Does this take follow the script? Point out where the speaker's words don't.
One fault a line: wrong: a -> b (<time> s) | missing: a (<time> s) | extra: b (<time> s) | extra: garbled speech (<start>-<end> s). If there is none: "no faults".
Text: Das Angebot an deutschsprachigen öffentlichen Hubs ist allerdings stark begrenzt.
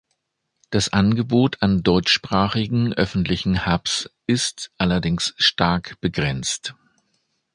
no faults